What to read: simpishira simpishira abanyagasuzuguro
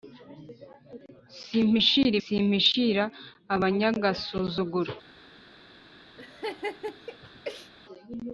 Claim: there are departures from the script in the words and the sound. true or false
true